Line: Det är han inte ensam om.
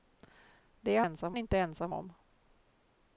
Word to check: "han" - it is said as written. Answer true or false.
false